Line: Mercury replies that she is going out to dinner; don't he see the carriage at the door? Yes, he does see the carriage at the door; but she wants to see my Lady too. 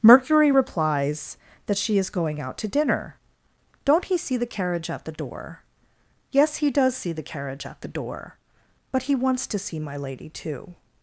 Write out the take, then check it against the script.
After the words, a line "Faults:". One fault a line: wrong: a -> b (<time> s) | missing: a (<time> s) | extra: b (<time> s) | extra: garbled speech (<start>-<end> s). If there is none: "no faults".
Mercury replies that she is going out to dinner; don't he see the carriage at the door? Yes, he does see the carriage at the door; but he wants to see my Lady too.
Faults:
wrong: she -> he (9.0 s)